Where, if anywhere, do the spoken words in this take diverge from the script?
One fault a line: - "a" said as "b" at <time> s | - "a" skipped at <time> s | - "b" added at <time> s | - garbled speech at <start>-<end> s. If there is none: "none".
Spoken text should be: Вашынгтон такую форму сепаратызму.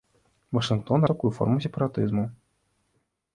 none